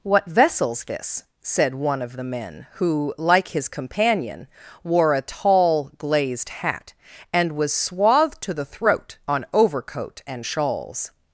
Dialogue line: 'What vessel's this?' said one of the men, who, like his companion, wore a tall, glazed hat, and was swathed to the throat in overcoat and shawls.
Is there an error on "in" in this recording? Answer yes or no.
yes